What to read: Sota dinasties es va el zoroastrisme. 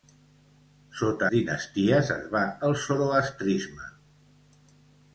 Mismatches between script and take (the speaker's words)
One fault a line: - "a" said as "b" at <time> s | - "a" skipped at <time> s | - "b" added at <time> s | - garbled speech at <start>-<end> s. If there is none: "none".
none